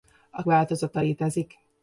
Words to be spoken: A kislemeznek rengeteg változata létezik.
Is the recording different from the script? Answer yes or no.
yes